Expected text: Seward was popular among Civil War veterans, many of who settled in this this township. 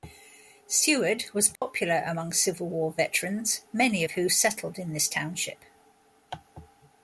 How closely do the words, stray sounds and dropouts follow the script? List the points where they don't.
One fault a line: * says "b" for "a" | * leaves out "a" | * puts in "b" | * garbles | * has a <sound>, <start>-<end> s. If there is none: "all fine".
* has a dropout, 1.6-1.6 s
* leaves out "this"